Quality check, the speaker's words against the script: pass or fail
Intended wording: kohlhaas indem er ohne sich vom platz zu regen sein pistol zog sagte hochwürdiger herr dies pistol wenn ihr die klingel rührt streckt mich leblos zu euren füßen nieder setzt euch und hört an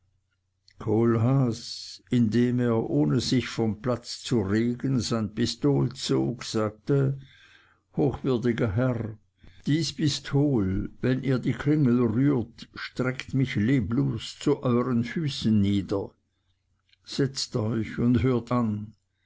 pass